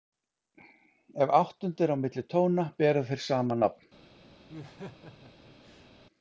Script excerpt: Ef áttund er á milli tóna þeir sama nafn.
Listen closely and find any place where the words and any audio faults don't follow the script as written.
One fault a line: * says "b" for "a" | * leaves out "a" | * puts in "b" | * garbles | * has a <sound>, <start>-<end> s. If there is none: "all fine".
* puts in "bera"
* has a laugh, 4.5-5.9 s